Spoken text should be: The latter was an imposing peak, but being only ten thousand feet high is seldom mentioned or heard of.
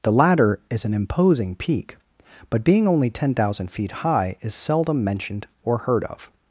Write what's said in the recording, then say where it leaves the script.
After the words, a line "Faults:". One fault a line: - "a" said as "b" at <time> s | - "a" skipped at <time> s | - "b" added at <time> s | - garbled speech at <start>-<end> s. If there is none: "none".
The latter is an imposing peak, but being only ten thousand feet high is seldom mentioned or heard of.
Faults:
- "was" said as "is" at 0.7 s